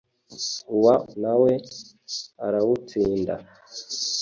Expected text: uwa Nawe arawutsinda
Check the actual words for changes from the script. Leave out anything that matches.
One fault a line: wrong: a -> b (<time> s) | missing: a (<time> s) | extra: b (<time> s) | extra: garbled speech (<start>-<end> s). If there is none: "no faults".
no faults